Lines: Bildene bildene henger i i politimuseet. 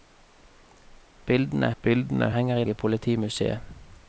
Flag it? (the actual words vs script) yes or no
no